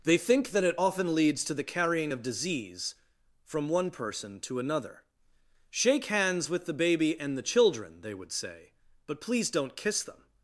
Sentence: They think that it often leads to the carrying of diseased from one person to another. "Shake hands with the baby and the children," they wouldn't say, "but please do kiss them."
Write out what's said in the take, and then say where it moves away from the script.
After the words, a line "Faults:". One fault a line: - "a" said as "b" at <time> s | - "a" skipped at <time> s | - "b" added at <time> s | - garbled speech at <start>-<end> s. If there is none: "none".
They think that it often leads to the carrying of disease from one person to another. "Shake hands with the baby and the children," they would say, "but please don't kiss them."
Faults:
- "diseased" said as "disease" at 2.2 s
- "wouldn't" said as "would" at 8.1 s
- "do" said as "don't" at 9.5 s